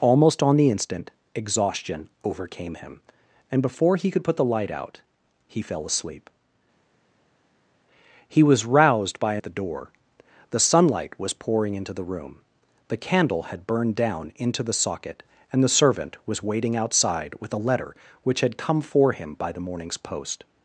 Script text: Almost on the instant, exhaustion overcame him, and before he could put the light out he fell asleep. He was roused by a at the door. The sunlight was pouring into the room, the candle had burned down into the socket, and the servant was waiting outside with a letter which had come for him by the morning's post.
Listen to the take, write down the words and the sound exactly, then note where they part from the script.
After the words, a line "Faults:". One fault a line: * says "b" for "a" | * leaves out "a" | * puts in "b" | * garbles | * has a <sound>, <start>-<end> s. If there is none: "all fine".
Almost on the instant, exhaustion overcame him, and before he could put the light out he fell asleep. He was roused by a at the door. The sunlight was pouring into the room, the candle had burned down into the socket, and the servant was waiting outside with a letter which had come for him by the morning's post.
Faults:
all fine